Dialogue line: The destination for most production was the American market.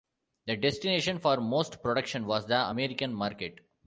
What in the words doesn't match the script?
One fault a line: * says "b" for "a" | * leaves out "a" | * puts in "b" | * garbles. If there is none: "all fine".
all fine